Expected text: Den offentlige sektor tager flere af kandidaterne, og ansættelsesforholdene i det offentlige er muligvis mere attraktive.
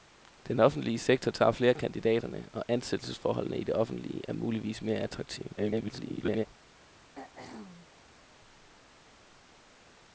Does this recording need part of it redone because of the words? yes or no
yes